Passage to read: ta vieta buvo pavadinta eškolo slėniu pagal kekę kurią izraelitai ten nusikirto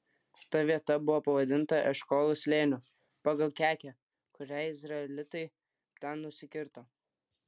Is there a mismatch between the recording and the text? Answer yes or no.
no